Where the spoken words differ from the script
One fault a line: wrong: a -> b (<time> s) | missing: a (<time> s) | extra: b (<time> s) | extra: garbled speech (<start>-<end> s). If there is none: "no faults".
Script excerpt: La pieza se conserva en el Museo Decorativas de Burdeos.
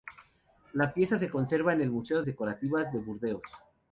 no faults